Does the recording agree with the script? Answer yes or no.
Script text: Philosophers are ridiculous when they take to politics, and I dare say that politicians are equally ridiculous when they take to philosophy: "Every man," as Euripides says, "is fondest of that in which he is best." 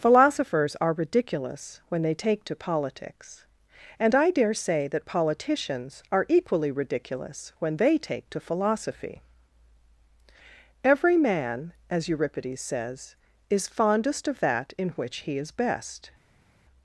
yes